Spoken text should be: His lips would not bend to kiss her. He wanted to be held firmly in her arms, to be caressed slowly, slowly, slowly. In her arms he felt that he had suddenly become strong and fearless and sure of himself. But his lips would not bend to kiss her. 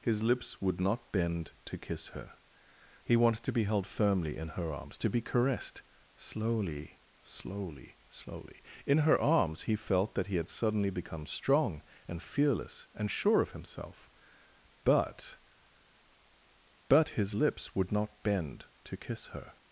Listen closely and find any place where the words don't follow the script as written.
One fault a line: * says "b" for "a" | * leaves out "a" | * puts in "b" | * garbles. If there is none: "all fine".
* puts in "But"